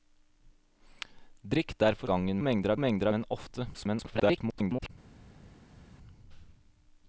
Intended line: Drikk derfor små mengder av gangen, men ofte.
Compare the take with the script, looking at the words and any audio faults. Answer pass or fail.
fail